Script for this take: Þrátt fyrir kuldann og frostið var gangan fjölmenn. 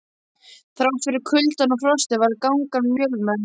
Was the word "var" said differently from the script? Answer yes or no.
no